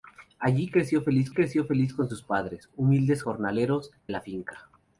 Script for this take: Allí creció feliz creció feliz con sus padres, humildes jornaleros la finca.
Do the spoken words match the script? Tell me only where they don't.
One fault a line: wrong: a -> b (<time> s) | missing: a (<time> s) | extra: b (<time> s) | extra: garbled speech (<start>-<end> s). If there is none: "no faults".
no faults